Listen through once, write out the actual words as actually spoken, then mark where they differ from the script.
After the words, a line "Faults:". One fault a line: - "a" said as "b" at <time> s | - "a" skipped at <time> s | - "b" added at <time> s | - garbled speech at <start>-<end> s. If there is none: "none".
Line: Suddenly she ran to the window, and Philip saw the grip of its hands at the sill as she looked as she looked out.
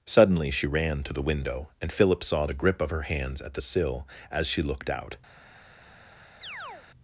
Suddenly she ran to the window, and Philip saw the grip of her hands at the sill as she looked out.
Faults:
- "its" said as "her" at 2.9 s
- "as she looked" skipped at 4.9 s